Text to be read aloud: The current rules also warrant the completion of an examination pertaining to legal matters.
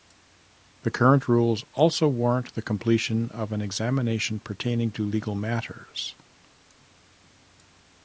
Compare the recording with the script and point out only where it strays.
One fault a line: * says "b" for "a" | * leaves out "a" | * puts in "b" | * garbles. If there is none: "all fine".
all fine